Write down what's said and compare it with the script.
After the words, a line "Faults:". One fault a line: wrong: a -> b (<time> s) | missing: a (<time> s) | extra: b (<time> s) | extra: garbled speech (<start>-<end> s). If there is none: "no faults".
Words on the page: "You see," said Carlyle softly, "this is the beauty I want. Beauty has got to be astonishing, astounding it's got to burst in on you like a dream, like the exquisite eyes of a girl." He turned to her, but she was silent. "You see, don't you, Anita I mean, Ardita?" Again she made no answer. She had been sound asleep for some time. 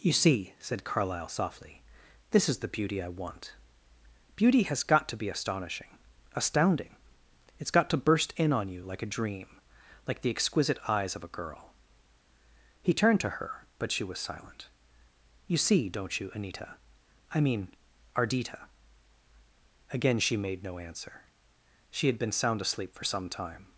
"You see," said Carlyle softly, "this is the beauty I want. Beauty has got to be astonishing, astounding it's got to burst in on you like a dream, like the exquisite eyes of a girl." He turned to her, but she was silent. "You see, don't you, Anita I mean, Ardita?" Again she made no answer. She had been sound asleep for some time.
Faults:
no faults